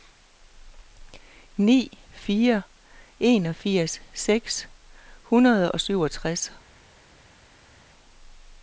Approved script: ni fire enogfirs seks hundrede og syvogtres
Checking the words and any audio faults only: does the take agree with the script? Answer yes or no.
yes